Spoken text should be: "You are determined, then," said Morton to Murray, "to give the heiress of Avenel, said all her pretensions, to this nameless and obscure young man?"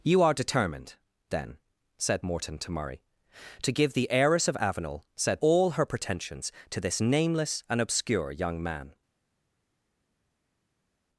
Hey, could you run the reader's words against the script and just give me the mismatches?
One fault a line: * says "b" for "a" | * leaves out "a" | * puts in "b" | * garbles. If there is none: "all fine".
all fine